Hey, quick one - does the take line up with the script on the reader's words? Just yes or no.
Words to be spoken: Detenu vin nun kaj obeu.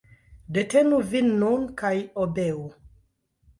yes